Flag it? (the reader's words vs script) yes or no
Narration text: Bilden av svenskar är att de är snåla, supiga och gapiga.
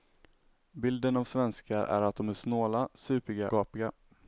yes